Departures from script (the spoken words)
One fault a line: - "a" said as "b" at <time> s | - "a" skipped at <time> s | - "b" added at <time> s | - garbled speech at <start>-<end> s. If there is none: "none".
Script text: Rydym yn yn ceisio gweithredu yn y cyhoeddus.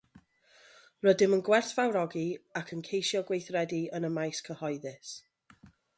- "gwerthfawrogi ac" added at 1.5 s
- "maes" added at 4.2 s